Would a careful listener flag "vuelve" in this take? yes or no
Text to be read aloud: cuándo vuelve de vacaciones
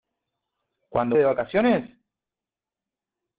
yes